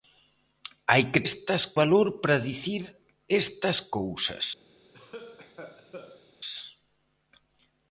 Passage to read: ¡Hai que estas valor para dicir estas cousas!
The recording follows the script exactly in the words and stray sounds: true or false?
false